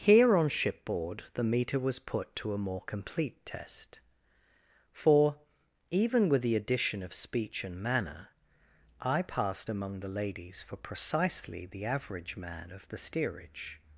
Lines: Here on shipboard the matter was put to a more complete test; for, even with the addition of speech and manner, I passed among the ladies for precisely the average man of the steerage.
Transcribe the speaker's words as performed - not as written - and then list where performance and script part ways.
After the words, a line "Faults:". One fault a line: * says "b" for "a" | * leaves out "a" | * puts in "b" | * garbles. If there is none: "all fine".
Here on shipboard the meter was put to a more complete test; for, even with the addition of speech and manner, I passed among the ladies for precisely the average man of the steerage.
Faults:
* says "meter" for "matter"